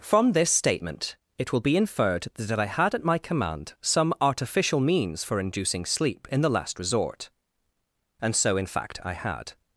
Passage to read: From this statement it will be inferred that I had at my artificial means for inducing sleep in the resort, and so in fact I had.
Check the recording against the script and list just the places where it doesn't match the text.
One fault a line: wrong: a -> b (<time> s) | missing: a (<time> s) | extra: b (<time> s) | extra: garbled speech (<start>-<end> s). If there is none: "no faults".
extra: command some (3.2 s)
extra: last (6.5 s)